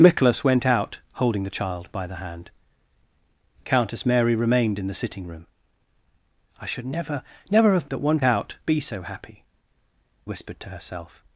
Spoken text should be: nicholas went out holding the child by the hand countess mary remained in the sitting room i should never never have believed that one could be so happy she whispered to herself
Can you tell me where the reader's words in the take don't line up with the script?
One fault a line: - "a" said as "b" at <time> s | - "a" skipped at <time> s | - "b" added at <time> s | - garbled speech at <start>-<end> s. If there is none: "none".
- "believed" skipped at 7.8 s
- "could" said as "out" at 8.2 s
- "she" skipped at 9.4 s